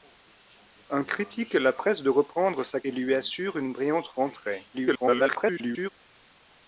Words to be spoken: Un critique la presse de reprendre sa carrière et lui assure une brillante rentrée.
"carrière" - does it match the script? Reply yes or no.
no